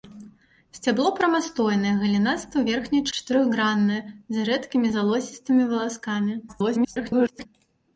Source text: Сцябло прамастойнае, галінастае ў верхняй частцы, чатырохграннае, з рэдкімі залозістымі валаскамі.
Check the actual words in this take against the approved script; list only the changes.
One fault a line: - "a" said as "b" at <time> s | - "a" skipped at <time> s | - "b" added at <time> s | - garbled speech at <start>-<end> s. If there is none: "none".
- "частцы" skipped at 3.0 s
- garbled speech at 6.5-7.5 s